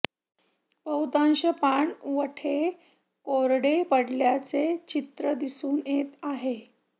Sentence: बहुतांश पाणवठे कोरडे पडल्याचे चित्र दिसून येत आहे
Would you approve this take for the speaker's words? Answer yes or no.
yes